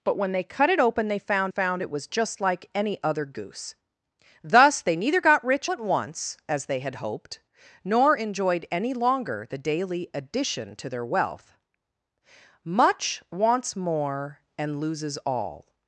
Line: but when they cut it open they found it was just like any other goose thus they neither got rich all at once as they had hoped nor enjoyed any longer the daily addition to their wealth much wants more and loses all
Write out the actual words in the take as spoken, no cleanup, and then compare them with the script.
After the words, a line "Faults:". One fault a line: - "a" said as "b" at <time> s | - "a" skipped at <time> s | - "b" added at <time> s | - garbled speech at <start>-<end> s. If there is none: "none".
but when they cut it open they found found it was just like any other goose thus they neither got rich at once as they had hoped nor enjoyed any longer the daily addition to their wealth much wants more and loses all
Faults:
- "found" added at 1.5 s
- "all" skipped at 5.7 s